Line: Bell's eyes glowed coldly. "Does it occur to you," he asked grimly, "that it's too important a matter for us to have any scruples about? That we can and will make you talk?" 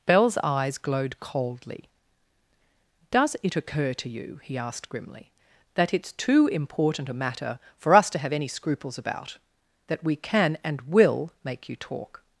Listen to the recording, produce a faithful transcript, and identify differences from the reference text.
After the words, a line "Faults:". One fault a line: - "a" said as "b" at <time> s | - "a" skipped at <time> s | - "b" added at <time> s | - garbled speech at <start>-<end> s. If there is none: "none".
Bell's eyes glowed coldly. "Does it occur to you," he asked grimly, "that it's too important a matter for us to have any scruples about? That we can and will make you talk?"
Faults:
none